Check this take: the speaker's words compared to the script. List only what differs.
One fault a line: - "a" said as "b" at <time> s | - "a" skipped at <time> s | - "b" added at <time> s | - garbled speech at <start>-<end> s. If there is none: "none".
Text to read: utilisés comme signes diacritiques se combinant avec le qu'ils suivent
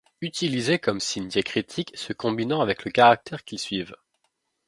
- "caractère" added at 2.9 s